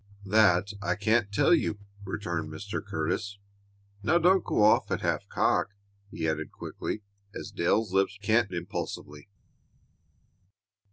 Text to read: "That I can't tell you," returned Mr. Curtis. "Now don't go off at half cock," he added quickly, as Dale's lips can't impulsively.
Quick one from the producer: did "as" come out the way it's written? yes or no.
yes